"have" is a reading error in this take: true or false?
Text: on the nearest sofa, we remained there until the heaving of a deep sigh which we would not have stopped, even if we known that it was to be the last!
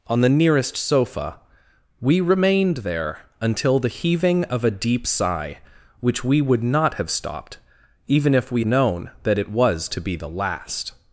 false